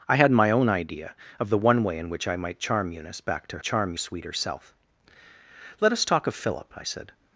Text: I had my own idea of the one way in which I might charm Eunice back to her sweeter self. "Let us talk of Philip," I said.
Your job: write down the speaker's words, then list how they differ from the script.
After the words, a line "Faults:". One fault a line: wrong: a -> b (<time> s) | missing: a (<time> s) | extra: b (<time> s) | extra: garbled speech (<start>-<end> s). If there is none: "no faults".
I had my own idea of the one way in which I might charm Eunice back to charm sweeter self. "Let us talk of Philip," I said.
Faults:
wrong: her -> charm (3.6 s)